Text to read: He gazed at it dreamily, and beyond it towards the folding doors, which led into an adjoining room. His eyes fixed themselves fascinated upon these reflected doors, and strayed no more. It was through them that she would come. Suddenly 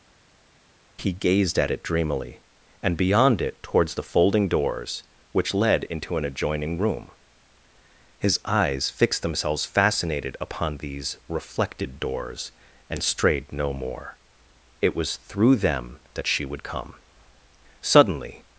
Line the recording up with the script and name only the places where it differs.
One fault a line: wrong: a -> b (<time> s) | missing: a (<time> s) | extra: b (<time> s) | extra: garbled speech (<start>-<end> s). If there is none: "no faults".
no faults